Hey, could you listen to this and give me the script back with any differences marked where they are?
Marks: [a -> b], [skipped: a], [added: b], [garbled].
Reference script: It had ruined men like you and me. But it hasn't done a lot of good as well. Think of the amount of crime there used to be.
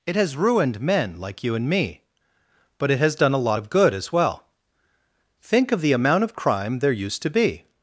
It [had -> has] ruined men like you and me. But it [hasn't -> has] done a lot of good as well. Think of the amount of crime there used to be.